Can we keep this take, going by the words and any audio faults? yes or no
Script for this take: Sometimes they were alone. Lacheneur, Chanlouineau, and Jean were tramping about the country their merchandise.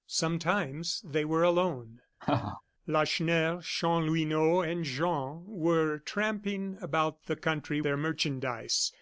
no